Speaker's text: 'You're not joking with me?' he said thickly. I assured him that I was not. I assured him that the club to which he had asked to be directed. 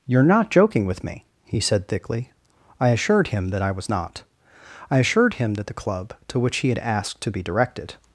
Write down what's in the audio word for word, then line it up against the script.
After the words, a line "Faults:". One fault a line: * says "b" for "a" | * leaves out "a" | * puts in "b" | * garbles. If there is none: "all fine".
'You're not joking with me?' he said thickly. I assured him that I was not. I assured him that the club to which he had asked to be directed.
Faults:
all fine